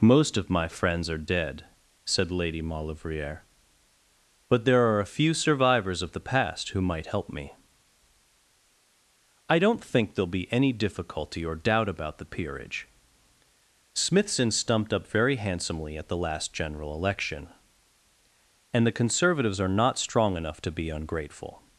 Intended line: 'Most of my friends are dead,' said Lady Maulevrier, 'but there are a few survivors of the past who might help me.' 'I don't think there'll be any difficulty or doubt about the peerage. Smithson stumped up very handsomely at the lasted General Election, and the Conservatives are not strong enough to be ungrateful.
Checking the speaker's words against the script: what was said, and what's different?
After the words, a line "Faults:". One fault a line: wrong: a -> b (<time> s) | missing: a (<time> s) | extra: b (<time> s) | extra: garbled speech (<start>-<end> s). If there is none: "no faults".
'Most of my friends are dead,' said Lady Maulevrier, 'but there are a few survivors of the past who might help me.' 'I don't think there'll be any difficulty or doubt about the peerage. Smithson stumped up very handsomely at the last General Election, and the Conservatives are not strong enough to be ungrateful.
Faults:
wrong: lasted -> last (16.2 s)